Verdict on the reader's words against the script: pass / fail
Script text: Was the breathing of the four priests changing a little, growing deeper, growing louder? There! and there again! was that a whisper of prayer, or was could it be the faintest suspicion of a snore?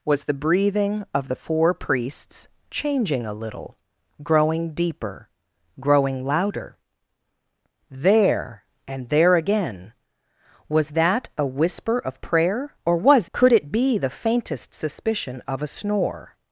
pass